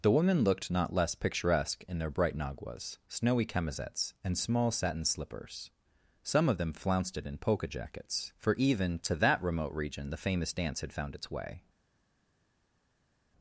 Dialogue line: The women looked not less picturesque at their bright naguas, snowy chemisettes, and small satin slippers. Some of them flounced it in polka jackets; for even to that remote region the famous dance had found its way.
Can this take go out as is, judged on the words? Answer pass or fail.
fail